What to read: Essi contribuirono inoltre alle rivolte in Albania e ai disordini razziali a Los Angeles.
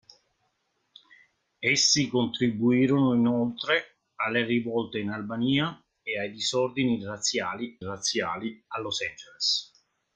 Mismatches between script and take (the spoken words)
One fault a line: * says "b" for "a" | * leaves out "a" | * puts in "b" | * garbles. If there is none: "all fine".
* puts in "razziali"